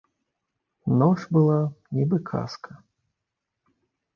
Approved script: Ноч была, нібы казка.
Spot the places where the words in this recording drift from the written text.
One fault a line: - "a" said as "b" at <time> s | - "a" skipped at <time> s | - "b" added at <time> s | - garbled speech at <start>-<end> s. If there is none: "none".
none